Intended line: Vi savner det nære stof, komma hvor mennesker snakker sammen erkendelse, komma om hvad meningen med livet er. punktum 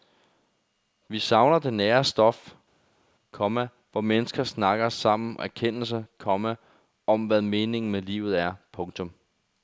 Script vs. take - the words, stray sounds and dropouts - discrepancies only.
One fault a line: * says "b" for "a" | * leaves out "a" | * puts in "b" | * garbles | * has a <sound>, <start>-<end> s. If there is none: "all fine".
all fine